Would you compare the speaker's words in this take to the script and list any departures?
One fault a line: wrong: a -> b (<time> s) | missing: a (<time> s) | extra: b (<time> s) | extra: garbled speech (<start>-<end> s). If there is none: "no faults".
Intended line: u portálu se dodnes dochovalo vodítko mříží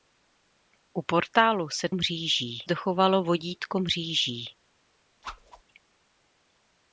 wrong: dodnes -> mříží (1.9 s)